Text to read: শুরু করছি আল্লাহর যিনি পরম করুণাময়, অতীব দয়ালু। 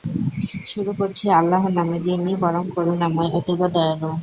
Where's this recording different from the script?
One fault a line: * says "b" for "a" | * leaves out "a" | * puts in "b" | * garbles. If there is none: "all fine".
* puts in "নামে"